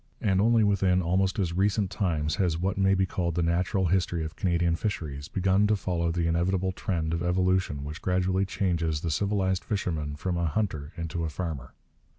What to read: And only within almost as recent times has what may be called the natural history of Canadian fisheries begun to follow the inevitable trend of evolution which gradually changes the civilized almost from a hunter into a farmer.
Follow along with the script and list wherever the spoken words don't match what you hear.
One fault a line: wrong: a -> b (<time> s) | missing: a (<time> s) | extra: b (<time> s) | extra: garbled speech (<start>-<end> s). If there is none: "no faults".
wrong: almost -> fisherman (9.6 s)